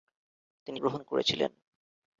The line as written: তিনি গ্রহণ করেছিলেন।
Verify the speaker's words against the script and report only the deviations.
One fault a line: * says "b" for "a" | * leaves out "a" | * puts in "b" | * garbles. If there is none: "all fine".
all fine